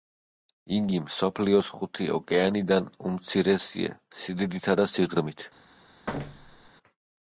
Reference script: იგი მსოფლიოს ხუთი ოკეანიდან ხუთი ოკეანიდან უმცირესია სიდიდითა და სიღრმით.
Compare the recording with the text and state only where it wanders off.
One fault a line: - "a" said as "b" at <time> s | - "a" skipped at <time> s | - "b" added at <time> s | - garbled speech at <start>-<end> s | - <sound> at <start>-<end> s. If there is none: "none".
- "ხუთი ოკეანიდან" skipped at 2.9 s
- thud at 6.1-6.7 s